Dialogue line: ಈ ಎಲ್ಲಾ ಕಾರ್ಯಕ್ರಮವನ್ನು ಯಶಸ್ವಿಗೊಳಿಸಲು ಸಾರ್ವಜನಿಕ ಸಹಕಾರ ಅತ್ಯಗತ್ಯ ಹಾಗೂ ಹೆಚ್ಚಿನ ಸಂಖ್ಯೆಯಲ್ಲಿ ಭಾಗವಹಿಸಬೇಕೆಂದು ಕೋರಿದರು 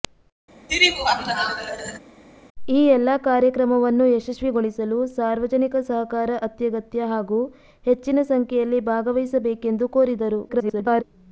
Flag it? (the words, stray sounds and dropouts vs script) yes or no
yes